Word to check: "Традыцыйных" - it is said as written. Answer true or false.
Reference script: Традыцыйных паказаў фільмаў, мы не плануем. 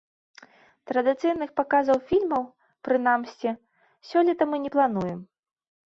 true